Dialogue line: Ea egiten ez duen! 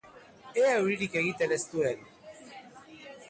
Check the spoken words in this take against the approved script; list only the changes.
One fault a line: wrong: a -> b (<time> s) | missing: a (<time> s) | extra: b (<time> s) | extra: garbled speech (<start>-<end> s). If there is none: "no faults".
extra: euririk (0.8 s)